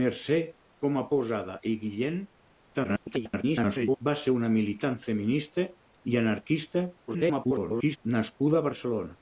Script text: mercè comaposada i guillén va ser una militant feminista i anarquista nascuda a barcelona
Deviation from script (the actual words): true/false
true